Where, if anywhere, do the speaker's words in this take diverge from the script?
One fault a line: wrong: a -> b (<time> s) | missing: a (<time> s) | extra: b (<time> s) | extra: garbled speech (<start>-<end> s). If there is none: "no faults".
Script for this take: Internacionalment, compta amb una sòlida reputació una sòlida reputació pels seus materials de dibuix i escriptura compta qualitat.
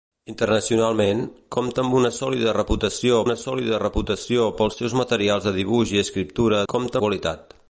no faults